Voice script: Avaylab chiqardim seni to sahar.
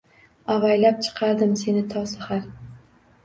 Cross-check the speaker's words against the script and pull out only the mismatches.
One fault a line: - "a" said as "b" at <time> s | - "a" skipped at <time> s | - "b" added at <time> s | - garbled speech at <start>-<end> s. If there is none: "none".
none